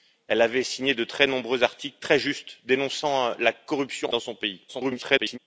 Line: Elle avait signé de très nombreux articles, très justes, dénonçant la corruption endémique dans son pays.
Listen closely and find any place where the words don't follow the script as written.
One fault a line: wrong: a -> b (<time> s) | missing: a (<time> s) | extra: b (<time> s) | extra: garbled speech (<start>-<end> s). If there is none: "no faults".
missing: endémique (4.1 s)
extra: garbled speech (4.7-5.4 s)